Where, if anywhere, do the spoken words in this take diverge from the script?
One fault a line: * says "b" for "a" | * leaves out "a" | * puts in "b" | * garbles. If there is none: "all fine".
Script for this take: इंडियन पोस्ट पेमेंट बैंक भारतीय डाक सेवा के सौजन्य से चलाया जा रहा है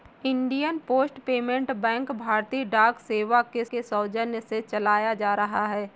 * puts in "के"